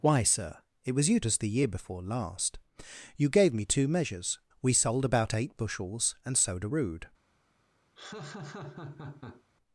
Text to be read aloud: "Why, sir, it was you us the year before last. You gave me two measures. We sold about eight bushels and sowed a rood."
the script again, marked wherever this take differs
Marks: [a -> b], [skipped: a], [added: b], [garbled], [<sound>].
"Why, sir, it was you us the year before last. You gave me two measures. We sold about eight bushels and sowed a rood." [laugh]